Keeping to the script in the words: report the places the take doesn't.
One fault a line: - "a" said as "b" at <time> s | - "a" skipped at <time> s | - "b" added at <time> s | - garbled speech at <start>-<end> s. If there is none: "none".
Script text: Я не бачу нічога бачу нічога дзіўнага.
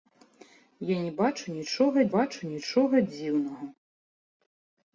none